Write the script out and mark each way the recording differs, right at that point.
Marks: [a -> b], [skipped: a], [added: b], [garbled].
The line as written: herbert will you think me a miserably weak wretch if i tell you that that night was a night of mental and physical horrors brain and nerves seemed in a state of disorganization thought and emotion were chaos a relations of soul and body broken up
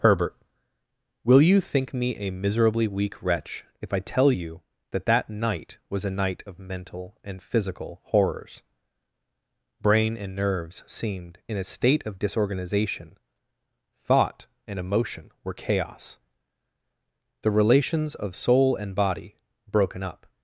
herbert will you think me a miserably weak wretch if i tell you that that night was a night of mental and physical horrors brain and nerves seemed in a state of disorganization thought and emotion were chaos [a -> the] relations of soul and body broken up